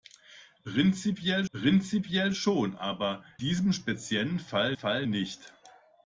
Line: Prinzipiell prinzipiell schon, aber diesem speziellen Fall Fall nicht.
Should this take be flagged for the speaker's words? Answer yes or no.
no